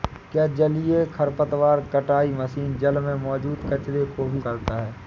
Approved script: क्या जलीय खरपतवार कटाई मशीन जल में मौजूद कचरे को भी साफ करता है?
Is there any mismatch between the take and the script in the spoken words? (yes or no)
yes